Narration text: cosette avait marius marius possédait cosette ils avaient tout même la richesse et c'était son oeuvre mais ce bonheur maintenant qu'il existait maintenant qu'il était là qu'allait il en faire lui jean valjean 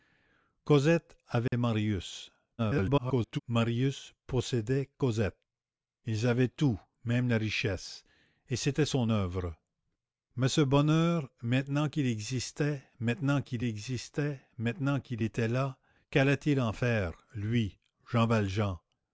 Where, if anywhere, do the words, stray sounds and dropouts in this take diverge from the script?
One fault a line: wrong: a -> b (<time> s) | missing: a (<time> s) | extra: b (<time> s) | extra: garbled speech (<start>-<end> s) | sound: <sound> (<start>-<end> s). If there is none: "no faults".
sound: dropout (1.5-1.5 s)
extra: garbled speech (2.6-3.4 s)
extra: existait maintenant qu'il (13.6 s)